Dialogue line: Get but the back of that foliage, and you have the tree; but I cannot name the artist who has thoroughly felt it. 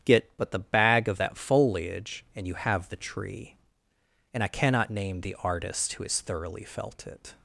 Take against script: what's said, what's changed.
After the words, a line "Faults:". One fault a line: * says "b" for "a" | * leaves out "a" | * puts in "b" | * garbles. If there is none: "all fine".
Get but the bag of that foliage, and you have the tree; and I cannot name the artist who has thoroughly felt it.
Faults:
* says "bag" for "back"
* says "and" for "but"